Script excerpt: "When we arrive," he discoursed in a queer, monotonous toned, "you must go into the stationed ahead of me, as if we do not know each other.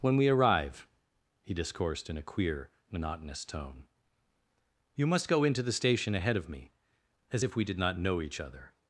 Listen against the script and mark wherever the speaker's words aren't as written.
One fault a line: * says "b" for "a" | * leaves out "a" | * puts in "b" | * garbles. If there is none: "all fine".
* says "tone" for "toned"
* says "station" for "stationed"
* says "did" for "do"